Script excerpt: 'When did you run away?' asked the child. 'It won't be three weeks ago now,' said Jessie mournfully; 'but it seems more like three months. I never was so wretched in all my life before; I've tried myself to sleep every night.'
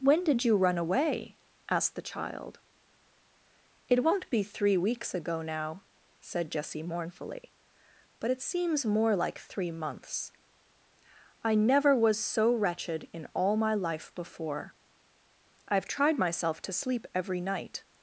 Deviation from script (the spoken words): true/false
false